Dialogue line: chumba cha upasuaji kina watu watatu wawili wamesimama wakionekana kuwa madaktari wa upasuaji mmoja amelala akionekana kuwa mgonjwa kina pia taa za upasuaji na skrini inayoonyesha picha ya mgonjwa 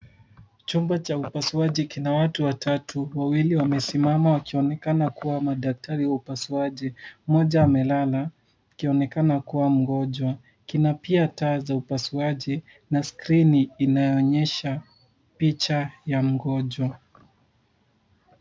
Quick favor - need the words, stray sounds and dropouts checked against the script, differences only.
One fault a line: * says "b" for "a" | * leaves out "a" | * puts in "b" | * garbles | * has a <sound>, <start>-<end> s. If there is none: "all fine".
all fine